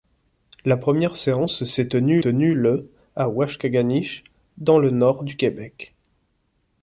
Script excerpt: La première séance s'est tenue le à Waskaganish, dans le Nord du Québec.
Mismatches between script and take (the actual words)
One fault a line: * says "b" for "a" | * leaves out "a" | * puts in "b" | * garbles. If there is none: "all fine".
* puts in "tenue"